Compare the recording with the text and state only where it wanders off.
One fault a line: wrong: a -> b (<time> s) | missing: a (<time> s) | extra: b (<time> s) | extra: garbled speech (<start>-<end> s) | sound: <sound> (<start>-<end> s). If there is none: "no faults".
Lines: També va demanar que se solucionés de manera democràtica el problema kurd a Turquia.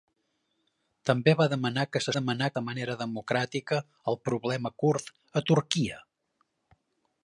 wrong: solucionés -> demanar (2.1 s)